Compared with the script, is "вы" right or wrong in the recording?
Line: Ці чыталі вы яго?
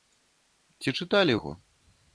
wrong